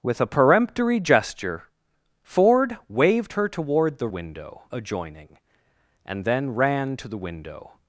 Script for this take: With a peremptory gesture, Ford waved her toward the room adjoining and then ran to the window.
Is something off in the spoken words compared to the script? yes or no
yes